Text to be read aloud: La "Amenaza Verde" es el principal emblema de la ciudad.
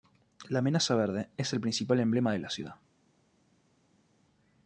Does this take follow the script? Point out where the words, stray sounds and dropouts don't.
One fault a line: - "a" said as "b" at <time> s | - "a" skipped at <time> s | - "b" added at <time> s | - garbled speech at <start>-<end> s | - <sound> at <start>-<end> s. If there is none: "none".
none